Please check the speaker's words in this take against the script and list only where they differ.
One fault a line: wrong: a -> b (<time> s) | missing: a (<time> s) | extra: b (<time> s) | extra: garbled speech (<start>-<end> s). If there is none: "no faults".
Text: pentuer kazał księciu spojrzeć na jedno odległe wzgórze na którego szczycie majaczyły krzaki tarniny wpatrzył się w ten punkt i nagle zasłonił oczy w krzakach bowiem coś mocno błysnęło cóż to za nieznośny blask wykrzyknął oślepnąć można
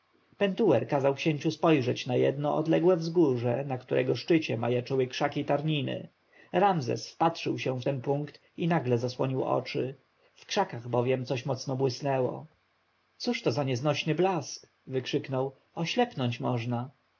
extra: ramzes (6.5 s)